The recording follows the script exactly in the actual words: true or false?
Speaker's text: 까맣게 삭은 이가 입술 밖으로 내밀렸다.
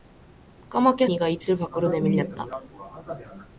false